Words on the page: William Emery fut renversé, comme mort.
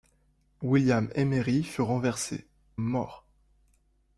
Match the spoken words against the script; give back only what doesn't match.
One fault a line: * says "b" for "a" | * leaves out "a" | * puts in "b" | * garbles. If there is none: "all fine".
* leaves out "comme"